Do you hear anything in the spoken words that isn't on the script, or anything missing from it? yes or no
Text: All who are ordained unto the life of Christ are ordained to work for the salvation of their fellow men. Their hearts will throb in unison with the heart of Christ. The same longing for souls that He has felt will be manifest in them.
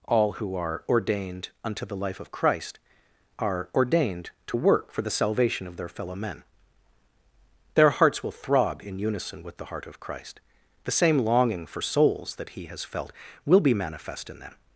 no